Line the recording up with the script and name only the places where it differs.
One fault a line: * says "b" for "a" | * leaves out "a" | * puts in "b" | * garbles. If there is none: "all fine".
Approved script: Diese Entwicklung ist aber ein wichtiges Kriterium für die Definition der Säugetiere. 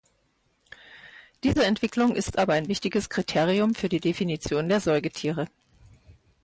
all fine